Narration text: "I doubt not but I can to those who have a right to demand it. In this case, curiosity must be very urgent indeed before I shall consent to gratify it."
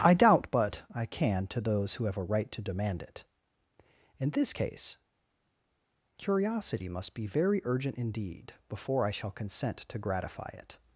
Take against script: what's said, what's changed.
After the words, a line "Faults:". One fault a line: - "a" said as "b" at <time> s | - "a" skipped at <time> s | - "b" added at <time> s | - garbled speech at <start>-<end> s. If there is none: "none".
"I doubt but I can to those who have a right to demand it. In this case, curiosity must be very urgent indeed before I shall consent to gratify it."
Faults:
- "not" skipped at 0.5 s